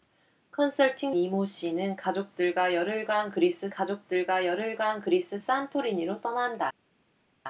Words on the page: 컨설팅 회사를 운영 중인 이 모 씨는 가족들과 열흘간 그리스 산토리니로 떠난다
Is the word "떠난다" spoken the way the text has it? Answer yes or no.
yes